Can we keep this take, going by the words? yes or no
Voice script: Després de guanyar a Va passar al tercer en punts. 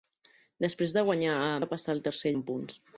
yes